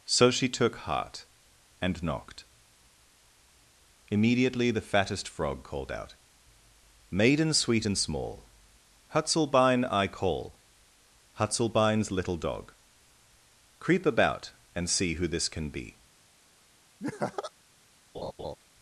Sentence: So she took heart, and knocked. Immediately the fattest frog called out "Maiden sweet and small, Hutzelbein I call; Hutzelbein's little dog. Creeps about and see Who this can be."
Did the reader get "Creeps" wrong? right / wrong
wrong